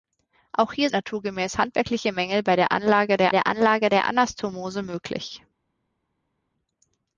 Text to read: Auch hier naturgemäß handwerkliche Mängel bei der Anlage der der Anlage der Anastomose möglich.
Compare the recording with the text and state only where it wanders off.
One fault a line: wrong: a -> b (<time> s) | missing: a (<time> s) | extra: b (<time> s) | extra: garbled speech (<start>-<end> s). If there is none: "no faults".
no faults